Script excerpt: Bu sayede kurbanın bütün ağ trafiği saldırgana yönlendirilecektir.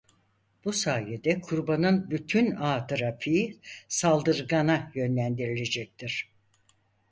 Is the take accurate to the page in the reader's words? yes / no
yes